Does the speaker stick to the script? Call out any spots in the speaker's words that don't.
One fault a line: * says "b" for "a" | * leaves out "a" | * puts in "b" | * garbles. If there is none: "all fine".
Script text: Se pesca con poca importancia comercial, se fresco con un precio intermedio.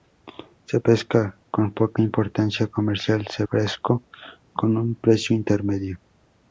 all fine